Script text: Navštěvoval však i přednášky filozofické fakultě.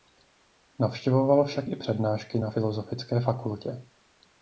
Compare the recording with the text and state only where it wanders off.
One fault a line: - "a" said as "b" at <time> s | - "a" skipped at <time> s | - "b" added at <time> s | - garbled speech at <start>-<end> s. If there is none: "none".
- "na" added at 2.4 s